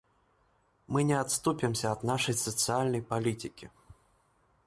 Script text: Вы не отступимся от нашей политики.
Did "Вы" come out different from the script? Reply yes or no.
yes